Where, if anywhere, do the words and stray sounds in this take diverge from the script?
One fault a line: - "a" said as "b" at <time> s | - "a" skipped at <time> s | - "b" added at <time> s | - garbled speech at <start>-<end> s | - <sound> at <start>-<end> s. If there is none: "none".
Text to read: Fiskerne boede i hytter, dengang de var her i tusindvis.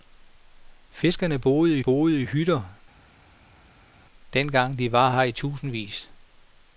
- "boede" added at 1.8 s